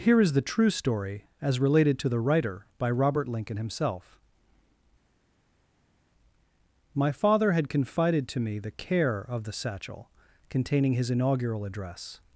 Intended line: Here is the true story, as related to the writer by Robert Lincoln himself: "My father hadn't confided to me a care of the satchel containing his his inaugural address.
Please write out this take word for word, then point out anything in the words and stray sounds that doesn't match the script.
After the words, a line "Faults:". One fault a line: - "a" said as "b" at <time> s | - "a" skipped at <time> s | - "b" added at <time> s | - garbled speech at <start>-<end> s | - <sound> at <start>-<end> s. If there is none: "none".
Here is the true story, as related to the writer by Robert Lincoln himself: "My father had confided to me the care of the satchel containing his inaugural address.
Faults:
- "hadn't" said as "had" at 7.5 s
- "a" said as "the" at 8.6 s
- "his" skipped at 11.1 s